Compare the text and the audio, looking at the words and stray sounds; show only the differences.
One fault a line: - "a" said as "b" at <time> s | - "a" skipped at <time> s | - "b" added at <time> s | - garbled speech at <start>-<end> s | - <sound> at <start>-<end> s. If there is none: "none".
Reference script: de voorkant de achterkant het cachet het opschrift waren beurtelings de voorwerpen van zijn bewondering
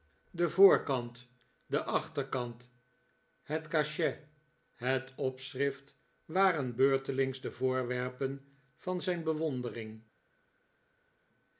none